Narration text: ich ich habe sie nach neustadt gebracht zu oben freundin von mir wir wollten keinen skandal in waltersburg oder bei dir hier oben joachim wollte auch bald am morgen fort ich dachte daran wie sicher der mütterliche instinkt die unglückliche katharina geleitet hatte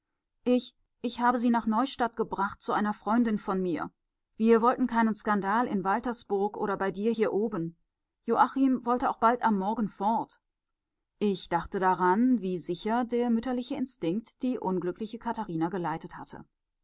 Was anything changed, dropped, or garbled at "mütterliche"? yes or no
no